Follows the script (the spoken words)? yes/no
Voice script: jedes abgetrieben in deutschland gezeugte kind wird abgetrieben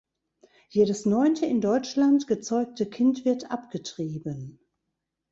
no